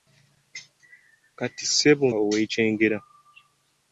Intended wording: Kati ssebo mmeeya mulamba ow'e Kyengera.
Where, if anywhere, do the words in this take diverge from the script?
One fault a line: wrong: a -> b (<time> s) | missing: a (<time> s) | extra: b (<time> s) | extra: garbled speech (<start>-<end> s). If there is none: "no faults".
missing: mmeeya mulamba (2.0 s)